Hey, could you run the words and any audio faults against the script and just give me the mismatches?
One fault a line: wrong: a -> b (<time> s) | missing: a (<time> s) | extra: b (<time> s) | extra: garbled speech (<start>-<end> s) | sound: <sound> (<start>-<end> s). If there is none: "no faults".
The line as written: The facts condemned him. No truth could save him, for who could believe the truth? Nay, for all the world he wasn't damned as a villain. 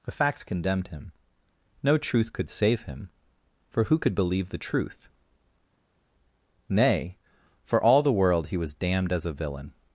wrong: wasn't -> was (8.6 s)